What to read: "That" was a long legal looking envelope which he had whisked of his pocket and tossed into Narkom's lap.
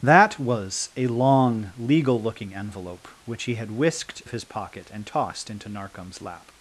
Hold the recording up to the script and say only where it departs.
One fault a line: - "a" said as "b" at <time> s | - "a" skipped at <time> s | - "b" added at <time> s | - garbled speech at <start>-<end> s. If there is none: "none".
none